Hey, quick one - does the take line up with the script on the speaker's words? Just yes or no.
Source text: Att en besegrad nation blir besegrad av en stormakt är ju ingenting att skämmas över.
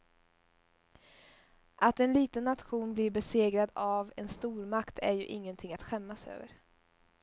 no